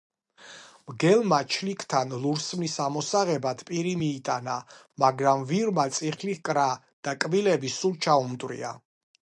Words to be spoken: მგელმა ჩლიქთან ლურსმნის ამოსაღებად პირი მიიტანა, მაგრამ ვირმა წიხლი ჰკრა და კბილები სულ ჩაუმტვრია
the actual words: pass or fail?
pass